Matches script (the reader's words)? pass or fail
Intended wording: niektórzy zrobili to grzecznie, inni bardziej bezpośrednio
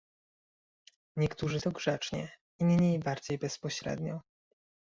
fail